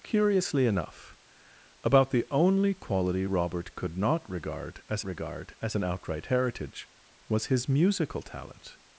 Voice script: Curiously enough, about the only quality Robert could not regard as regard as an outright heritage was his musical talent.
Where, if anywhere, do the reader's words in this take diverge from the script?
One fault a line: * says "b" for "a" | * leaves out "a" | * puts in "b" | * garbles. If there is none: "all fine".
all fine